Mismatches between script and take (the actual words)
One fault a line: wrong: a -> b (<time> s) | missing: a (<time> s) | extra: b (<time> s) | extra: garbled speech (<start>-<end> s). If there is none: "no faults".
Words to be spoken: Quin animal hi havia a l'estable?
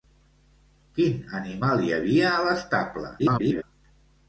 extra: garbled speech (3.2-3.6 s)